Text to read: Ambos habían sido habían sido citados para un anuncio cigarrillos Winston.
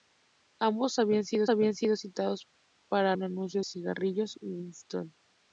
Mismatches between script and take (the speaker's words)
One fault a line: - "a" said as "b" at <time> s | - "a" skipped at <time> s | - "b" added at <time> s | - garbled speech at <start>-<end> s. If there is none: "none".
none